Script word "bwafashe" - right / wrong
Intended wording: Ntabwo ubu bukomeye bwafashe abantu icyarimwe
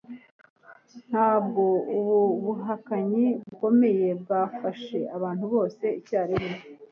right